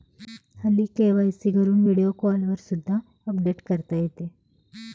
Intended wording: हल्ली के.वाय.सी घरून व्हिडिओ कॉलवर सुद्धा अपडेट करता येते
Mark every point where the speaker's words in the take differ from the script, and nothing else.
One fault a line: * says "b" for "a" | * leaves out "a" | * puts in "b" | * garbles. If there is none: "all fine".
all fine